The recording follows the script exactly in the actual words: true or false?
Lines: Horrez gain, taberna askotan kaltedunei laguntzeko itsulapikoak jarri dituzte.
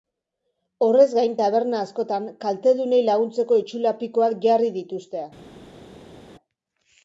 true